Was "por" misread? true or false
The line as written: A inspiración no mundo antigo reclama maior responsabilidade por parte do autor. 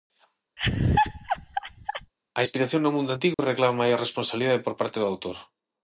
false